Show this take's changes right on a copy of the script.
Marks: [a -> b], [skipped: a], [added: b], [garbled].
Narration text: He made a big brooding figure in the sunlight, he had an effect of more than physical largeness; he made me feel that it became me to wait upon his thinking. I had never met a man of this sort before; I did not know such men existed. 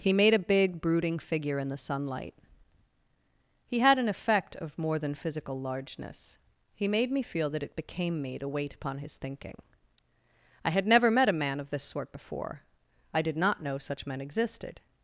He made a big brooding figure in the sunlight, he had an effect of more than physical largeness; he made me feel that it became me to wait upon his thinking. I had never met a man of this sort before; I did not know such men existed.